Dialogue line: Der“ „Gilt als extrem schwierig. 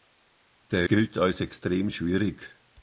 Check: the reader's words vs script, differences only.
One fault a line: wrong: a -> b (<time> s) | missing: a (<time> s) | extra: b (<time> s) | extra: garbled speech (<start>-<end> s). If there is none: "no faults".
no faults